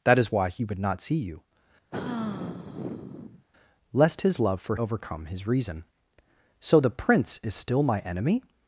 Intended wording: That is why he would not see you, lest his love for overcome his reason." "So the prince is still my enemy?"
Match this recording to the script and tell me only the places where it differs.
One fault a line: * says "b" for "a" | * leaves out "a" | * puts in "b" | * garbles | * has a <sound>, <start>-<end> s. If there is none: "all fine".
* has a sigh, 1.9-3.4 s